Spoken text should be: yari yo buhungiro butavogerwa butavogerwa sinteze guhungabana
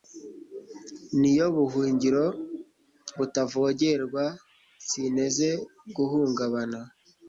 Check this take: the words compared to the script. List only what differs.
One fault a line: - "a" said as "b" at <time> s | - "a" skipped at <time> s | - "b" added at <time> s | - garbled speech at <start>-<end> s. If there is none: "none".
- "yari" said as "ni" at 1.2 s
- "butavogerwa" skipped at 4.2 s